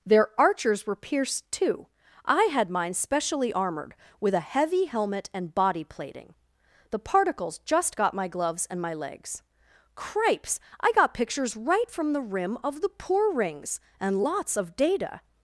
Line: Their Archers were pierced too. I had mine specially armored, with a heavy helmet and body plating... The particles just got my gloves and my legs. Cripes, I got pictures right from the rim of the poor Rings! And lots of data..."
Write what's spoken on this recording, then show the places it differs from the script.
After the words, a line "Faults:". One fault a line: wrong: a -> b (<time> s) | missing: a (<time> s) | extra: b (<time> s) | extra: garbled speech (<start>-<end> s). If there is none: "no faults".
Their Archers were pierced too. I had mine specially armored, with a heavy helmet and body plating... The particles just got my gloves and my legs. Cripes, I got pictures right from the rim of the poor Rings! And lots of data..."
Faults:
no faults